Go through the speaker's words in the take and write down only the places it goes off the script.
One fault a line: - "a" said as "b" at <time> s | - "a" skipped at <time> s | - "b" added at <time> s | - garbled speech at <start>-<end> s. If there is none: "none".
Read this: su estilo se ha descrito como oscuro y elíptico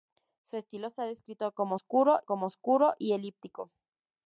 - "como oscuro" added at 2.2 s